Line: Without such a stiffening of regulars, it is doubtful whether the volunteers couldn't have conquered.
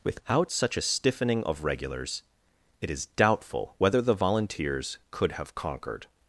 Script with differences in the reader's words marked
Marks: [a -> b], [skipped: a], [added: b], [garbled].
Without such a stiffening of regulars, it is doubtful whether the volunteers [couldn't -> could] have conquered.